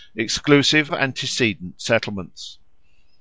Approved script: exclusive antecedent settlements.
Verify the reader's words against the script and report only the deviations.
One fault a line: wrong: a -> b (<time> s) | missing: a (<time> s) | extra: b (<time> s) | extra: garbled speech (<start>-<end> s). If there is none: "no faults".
no faults